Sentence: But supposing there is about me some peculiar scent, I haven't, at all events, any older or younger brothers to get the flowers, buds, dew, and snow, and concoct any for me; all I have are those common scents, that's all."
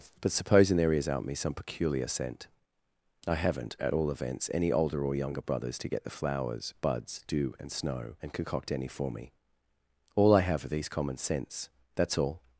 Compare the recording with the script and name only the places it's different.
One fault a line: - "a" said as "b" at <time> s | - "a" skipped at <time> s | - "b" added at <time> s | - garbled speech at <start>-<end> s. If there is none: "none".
- "about" said as "out" at 1.1 s
- "those" said as "these" at 10.7 s